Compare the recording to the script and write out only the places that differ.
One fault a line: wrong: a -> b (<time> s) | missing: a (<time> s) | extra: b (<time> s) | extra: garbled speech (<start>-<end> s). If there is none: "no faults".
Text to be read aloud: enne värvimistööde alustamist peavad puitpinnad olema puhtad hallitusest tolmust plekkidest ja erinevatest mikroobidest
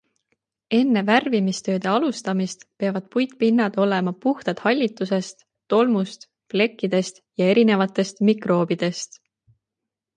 no faults